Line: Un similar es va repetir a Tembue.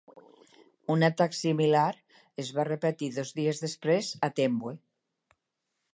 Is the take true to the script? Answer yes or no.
no